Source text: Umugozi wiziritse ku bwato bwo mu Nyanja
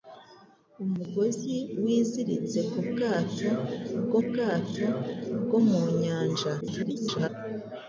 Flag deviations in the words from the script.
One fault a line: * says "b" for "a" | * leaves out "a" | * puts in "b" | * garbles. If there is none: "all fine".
* puts in "bwato bwo"
* garbles